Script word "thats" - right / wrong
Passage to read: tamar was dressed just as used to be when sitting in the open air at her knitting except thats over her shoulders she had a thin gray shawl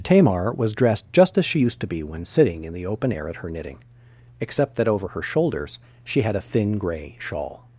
wrong